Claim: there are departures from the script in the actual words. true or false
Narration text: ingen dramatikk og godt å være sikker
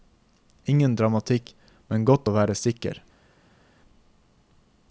true